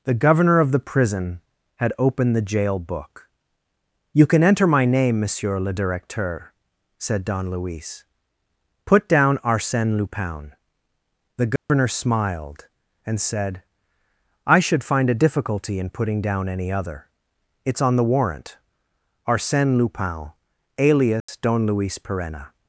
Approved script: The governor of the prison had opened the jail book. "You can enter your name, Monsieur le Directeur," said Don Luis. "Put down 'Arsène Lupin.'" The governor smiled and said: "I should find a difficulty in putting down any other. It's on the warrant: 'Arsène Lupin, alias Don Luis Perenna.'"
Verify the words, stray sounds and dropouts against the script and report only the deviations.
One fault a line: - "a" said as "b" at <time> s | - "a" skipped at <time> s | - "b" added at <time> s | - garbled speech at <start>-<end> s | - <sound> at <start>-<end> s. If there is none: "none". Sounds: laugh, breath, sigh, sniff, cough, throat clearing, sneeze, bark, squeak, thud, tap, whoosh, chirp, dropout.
- "your" said as "my" at 4.7 s
- dropout at 11.6-11.7 s
- dropout at 21.2-21.3 s